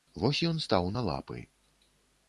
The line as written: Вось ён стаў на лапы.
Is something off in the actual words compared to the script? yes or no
no